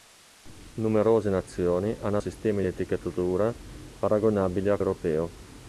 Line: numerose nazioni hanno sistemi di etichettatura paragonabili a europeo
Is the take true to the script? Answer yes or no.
yes